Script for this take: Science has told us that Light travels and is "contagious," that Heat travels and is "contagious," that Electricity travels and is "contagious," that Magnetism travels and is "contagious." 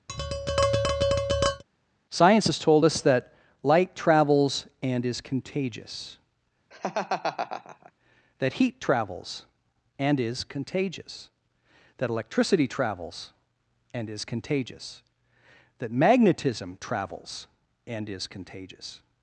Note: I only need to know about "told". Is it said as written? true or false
true